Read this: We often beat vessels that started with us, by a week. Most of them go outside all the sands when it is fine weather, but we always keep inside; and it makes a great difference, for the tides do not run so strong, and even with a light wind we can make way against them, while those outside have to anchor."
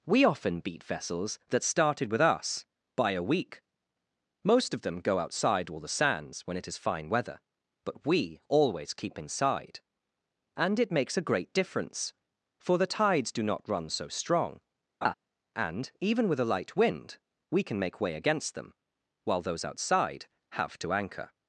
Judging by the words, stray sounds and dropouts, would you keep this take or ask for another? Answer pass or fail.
fail